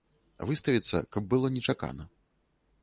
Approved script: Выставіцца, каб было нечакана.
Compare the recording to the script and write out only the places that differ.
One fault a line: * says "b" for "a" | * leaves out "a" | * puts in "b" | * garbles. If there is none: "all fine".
all fine